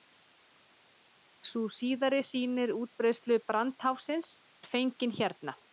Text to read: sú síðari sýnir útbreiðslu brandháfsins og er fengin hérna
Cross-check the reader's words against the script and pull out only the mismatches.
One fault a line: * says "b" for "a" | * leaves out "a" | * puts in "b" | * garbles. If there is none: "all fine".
* leaves out "og"